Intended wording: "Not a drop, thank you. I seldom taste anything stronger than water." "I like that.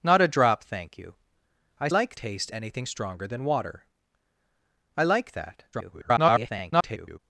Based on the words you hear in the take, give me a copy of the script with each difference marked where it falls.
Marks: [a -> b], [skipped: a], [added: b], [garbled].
"Not a drop, thank you. I [seldom -> like] taste anything stronger than water." "I like that. [garbled]